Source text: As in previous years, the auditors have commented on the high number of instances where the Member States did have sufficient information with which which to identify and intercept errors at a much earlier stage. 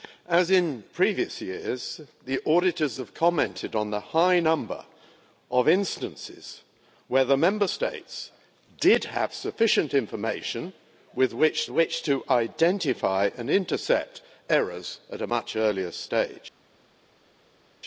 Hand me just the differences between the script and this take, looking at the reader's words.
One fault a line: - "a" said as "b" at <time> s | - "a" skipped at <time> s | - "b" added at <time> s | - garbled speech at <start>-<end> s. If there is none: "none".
none